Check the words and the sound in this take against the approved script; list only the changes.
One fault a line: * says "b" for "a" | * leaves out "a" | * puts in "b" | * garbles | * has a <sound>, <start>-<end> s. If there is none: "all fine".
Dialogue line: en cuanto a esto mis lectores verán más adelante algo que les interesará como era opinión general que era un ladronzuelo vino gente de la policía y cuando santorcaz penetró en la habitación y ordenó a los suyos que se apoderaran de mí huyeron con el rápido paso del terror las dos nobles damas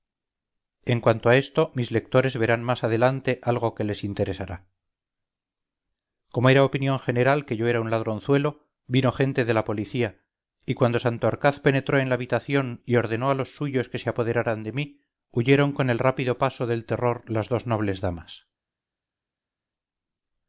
* puts in "yo"